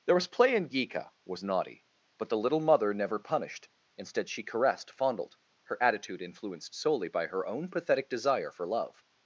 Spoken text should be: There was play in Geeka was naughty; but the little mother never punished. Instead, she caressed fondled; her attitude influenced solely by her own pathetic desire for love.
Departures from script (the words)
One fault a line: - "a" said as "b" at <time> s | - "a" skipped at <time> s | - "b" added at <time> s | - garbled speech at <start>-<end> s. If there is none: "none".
none